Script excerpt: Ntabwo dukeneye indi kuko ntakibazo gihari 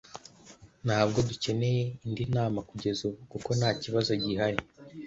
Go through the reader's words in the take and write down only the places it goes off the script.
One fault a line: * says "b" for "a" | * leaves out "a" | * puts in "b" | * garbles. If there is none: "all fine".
* puts in "nama kugeza ubu"